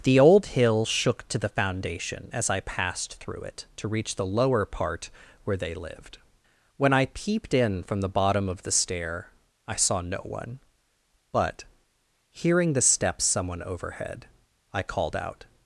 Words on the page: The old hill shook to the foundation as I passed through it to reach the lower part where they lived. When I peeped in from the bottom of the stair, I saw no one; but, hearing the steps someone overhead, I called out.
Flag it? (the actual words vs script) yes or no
no